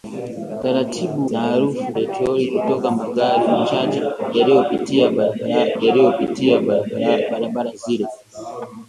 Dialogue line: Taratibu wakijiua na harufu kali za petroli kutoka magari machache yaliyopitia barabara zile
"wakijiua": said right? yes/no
no